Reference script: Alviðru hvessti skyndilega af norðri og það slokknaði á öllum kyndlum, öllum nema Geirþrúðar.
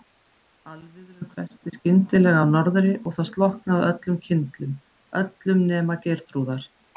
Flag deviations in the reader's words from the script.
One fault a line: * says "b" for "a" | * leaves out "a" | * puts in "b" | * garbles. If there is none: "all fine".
all fine